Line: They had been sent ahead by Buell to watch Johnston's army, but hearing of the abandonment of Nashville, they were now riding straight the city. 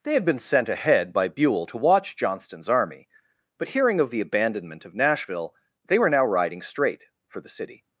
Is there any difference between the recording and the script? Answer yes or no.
yes